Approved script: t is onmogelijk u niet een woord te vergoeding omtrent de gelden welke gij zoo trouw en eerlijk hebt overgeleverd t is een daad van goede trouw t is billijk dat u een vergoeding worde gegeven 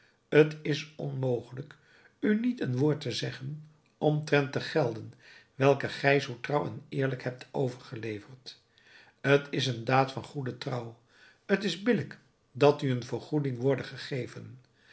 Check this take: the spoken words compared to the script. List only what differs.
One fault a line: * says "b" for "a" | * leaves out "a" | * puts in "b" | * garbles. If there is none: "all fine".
* says "zeggen" for "vergoeding"